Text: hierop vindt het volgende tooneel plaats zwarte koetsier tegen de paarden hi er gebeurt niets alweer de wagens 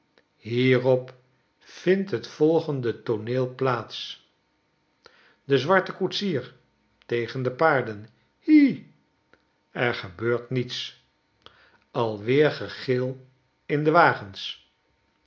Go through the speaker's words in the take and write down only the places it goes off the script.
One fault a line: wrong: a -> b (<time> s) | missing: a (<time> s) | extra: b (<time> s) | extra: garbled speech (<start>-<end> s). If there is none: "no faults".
extra: de (5.4 s)
extra: gegil in (12.5 s)